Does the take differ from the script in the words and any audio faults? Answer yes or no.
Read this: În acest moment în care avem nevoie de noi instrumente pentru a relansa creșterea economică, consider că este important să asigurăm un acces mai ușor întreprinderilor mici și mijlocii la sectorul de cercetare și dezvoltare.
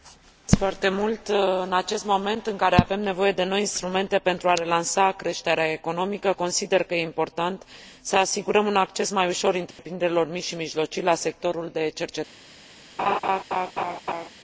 yes